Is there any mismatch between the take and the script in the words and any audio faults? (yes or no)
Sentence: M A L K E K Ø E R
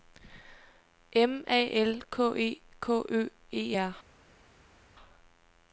no